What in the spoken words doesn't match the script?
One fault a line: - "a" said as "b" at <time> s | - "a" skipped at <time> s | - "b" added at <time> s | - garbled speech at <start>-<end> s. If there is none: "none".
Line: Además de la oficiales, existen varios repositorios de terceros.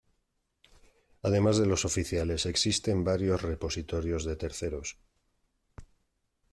- "la" said as "los" at 1.7 s